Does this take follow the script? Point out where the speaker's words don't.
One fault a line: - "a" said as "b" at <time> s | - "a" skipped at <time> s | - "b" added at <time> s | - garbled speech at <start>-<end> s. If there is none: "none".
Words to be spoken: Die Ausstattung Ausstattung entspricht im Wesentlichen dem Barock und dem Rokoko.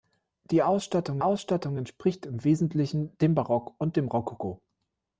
none